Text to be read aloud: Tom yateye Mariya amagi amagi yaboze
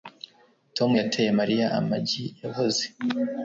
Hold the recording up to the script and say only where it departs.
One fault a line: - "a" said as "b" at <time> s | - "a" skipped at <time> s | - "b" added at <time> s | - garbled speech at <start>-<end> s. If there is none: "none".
- "amagi" skipped at 2.2 s